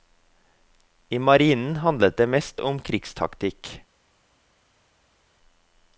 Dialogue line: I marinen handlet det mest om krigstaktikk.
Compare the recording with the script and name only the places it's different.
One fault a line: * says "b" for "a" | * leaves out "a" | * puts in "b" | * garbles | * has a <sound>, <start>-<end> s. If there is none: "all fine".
all fine